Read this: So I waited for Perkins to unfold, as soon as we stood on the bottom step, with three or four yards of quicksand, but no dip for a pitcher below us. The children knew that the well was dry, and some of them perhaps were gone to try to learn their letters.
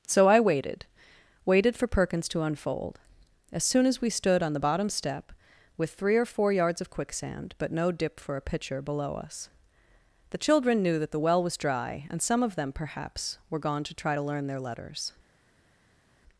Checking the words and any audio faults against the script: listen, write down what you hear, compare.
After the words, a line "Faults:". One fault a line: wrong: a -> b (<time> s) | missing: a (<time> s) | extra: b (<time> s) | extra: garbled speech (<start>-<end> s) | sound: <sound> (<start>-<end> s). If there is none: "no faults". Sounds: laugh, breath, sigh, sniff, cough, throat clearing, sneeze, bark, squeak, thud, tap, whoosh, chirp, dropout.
So I waited waited for Perkins to unfold, as soon as we stood on the bottom step, with three or four yards of quicksand, but no dip for a pitcher below us. The children knew that the well was dry, and some of them perhaps were gone to try to learn their letters.
Faults:
extra: waited (1.4 s)